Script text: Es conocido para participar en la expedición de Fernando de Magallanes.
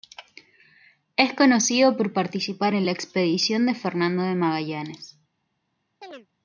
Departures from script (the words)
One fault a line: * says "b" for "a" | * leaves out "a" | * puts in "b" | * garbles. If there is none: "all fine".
* says "por" for "para"